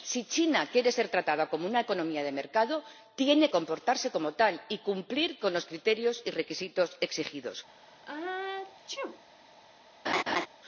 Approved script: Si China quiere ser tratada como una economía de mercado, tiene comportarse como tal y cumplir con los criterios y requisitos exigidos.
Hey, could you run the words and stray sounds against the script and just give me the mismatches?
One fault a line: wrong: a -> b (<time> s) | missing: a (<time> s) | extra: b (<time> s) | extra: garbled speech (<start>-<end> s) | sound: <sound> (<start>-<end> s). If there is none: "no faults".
sound: sneeze (7.7-9.2 s)
sound: laugh (10.1-10.5 s)